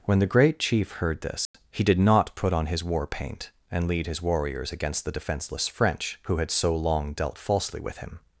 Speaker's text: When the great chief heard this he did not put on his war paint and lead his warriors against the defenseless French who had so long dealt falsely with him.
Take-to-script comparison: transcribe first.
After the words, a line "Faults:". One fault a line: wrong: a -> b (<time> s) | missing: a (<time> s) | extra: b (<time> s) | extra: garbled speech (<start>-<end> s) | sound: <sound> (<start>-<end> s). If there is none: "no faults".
When the great chief heard this he did not put on his war paint and lead his warriors against the defenseless French who had so long dealt falsely with him.
Faults:
sound: dropout (1.5-1.5 s)